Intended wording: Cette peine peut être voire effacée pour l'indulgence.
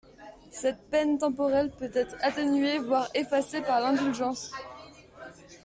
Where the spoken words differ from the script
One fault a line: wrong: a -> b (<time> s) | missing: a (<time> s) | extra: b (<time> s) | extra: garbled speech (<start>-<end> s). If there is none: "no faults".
extra: temporelle (1.2 s)
extra: atténuée (2.2 s)
wrong: pour -> par (3.6 s)